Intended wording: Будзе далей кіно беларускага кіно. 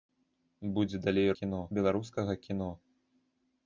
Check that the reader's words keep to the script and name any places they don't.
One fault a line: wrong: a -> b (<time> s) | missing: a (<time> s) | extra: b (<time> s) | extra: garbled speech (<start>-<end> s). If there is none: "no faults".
no faults